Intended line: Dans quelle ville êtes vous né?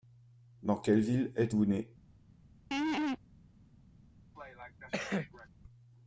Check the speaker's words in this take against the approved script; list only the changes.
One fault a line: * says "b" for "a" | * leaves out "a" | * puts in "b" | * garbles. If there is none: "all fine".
all fine